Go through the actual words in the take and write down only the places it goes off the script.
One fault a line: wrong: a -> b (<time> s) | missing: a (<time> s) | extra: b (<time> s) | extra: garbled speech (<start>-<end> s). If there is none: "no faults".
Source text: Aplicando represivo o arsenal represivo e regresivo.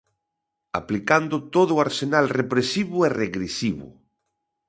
wrong: represivo -> todo (1.6 s)